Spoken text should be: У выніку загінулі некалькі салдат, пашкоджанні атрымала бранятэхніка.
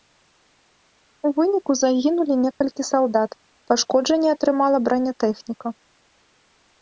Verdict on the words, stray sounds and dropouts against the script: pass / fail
fail